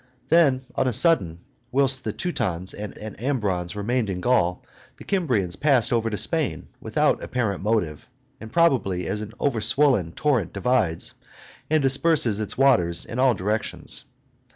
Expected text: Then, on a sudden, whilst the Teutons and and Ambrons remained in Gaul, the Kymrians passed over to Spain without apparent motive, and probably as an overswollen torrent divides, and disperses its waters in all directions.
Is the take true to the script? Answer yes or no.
yes